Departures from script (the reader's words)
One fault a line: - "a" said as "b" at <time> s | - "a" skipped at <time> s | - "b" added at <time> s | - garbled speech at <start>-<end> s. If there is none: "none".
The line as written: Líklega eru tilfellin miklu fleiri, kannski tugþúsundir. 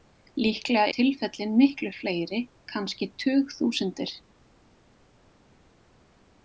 - "eru" skipped at 0.8 s